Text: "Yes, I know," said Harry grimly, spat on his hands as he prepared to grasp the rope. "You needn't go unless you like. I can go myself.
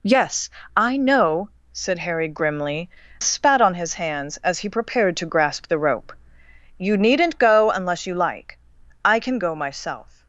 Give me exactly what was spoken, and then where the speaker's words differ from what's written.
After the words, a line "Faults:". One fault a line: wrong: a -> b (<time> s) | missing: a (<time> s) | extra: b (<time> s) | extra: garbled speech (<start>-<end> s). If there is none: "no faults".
"Yes, I know," said Harry grimly, spat on his hands as he prepared to grasp the rope. "You needn't go unless you like. I can go myself.
Faults:
no faults